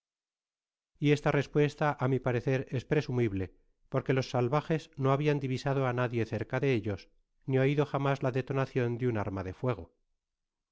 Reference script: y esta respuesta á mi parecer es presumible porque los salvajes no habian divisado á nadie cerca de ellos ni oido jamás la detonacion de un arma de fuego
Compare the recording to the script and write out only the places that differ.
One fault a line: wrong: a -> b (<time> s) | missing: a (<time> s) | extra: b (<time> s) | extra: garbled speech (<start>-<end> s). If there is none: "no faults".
no faults